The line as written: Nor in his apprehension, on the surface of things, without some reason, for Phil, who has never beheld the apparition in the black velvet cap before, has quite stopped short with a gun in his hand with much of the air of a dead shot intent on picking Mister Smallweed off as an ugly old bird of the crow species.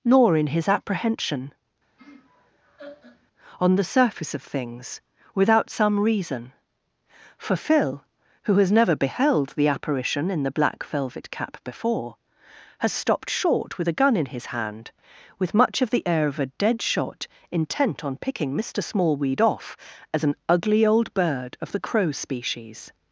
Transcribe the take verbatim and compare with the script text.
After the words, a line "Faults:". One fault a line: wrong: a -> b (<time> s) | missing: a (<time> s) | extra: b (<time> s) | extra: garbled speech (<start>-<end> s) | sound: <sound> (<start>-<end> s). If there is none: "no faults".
Nor in his apprehension, on the surface of things, without some reason, for Phil, who has never beheld the apparition in the black velvet cap before, has stopped short with a gun in his hand with much of the air of a dead shot intent on picking Mister Smallweed off as an ugly old bird of the crow species.
Faults:
sound: laugh (2.0-3.3 s)
missing: quite (12.9 s)